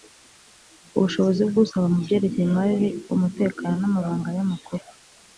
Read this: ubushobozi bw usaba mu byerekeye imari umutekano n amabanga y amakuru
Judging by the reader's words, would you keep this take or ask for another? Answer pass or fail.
pass